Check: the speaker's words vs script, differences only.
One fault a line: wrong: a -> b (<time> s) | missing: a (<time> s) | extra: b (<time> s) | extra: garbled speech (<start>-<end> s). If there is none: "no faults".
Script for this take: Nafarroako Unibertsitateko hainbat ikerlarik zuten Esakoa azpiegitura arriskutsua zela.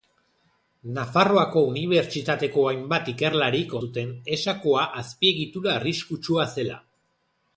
no faults